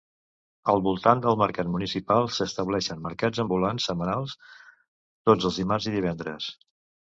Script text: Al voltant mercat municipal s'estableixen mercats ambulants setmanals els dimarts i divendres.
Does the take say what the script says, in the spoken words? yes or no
no